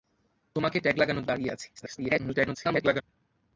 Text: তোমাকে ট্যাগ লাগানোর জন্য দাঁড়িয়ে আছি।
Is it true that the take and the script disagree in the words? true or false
true